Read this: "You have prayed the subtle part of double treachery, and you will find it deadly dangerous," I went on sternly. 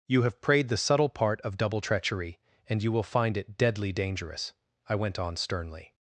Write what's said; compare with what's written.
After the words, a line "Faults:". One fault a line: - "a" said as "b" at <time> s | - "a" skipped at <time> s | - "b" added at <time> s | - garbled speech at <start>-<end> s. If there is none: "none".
"You have prayed the subtle part of double treachery, and you will find it deadly dangerous," I went on sternly.
Faults:
none